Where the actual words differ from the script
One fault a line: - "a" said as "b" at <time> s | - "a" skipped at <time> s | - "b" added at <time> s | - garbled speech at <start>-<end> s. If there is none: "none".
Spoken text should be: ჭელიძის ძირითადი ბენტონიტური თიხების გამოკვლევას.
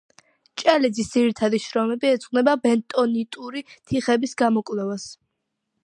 - "შრომები ეძღვნება" added at 1.6 s